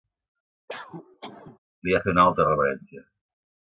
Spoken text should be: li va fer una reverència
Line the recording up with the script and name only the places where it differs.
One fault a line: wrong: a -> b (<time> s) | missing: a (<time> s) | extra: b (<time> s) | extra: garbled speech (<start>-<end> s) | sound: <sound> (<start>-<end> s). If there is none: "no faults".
sound: cough (0.7-1.6 s)
extra: altra (2.3 s)